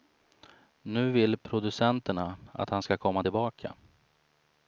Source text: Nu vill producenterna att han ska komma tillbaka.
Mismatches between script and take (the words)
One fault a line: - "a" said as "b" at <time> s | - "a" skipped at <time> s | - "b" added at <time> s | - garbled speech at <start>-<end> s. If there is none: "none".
none